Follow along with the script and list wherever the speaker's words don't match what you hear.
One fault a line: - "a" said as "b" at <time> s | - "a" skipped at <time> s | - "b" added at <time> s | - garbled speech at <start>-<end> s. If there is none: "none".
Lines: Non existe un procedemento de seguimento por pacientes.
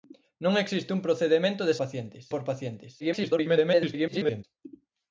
- "seguimento" said as "pacientes" at 1.8 s
- garbled speech at 3.0-4.4 s